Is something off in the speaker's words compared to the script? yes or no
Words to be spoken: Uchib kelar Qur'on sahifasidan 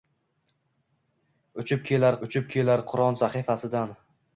yes